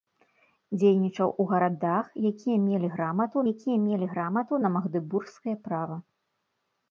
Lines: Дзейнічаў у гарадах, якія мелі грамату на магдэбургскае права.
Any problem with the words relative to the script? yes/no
yes